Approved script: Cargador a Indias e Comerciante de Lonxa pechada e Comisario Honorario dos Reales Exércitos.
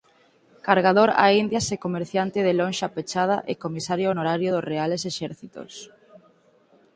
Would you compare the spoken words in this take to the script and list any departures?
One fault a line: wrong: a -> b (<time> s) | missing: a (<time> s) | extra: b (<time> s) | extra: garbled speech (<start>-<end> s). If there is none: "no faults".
no faults